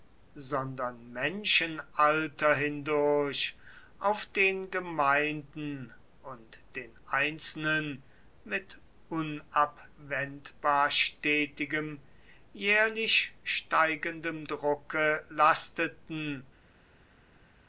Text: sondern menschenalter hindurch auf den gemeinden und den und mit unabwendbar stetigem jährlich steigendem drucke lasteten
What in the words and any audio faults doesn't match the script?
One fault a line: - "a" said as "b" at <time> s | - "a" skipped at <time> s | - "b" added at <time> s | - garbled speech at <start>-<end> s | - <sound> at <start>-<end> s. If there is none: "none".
- "und" said as "einzelnen" at 7.0 s